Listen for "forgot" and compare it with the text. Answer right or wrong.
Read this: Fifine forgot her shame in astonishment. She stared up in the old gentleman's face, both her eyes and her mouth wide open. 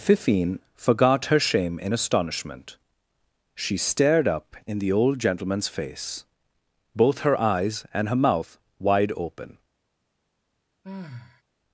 right